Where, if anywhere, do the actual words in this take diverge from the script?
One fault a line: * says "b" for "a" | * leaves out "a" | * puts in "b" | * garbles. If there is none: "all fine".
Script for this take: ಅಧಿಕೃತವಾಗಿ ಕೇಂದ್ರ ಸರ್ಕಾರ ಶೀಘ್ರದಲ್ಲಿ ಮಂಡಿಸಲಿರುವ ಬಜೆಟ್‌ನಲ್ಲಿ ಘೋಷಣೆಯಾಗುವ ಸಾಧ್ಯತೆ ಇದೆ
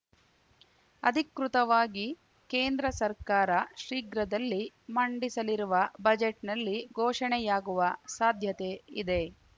all fine